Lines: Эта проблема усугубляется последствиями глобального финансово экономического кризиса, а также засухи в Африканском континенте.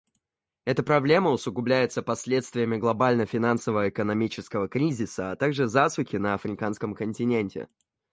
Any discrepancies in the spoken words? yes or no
yes